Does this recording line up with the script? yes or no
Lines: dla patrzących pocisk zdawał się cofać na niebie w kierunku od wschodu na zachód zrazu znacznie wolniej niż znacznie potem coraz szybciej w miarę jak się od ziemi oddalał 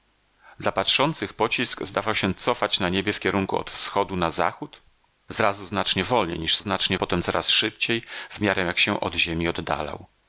yes